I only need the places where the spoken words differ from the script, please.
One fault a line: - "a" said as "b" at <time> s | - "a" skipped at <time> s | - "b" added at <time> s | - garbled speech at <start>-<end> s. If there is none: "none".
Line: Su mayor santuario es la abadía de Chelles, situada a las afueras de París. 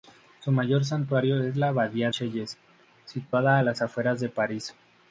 - "de" skipped at 2.1 s